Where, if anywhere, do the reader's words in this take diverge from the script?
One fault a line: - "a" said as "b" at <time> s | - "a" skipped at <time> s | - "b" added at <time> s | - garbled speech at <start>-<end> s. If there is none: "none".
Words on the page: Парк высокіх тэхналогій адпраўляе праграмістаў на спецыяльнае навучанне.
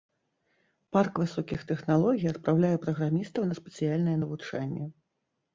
none